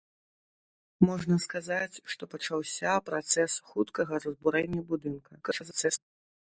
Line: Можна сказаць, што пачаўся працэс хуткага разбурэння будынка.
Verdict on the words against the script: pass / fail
fail